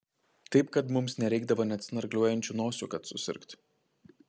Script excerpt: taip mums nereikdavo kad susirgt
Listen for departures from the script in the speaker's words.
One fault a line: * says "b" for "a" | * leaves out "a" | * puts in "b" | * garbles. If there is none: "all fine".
* puts in "kad"
* puts in "net snargliuojančių nosių"